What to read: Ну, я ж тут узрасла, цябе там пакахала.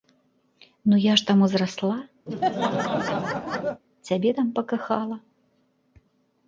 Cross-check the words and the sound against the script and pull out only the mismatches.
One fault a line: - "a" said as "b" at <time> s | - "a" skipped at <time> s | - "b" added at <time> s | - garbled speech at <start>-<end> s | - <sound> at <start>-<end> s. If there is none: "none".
- "тут" said as "там" at 1.3 s
- laugh at 2.3-3.8 s